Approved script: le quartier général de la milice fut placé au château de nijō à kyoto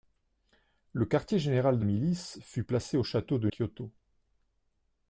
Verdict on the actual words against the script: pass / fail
fail